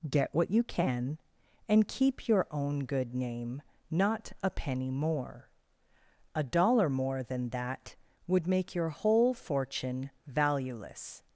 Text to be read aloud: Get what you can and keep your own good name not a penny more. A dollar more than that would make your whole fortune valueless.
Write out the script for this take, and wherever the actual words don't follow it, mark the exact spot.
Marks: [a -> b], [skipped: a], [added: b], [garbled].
Get what you can and keep your own good name not a penny more. A dollar more than that would make your whole fortune valueless.